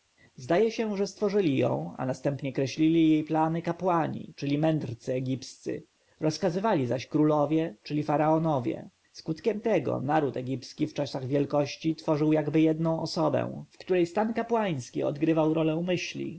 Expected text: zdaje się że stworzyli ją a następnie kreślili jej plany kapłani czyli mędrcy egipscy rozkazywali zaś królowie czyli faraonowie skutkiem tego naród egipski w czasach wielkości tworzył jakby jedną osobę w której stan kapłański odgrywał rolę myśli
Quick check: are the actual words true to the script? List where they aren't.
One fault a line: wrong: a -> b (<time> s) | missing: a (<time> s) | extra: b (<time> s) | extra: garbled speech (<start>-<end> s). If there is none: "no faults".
no faults